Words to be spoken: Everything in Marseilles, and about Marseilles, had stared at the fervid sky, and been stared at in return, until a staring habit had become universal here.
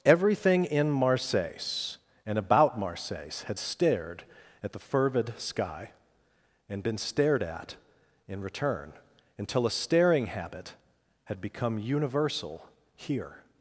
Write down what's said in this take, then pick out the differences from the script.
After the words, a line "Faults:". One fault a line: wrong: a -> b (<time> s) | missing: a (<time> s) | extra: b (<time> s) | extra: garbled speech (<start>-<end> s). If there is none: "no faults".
Everything in Marseilles, and about Marseilles, had stared at the fervid sky, and been stared at in return, until a staring habit had become universal here.
Faults:
no faults